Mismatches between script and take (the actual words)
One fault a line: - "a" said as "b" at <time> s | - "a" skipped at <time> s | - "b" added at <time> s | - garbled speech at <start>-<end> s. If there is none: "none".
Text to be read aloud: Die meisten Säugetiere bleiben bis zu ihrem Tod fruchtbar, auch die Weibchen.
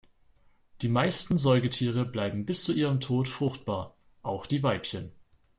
none